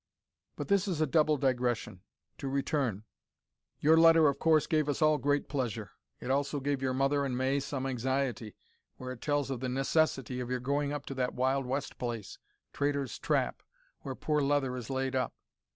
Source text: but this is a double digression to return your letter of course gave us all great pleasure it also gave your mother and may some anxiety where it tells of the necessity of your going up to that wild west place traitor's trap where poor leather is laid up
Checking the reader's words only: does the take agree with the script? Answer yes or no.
yes